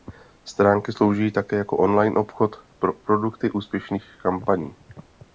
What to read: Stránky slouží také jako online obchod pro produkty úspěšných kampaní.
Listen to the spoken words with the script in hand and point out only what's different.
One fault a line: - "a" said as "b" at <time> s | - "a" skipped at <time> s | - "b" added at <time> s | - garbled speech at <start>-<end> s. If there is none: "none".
none